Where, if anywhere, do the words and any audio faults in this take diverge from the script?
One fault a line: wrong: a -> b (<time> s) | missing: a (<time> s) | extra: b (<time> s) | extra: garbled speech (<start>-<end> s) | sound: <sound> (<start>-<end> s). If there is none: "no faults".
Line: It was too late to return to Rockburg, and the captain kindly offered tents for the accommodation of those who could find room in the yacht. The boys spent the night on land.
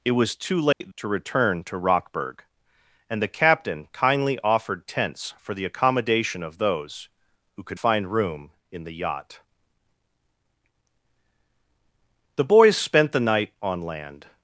sound: dropout (0.7-0.8 s)